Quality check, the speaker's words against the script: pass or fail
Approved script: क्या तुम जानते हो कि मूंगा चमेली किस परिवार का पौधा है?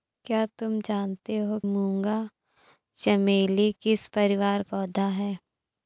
fail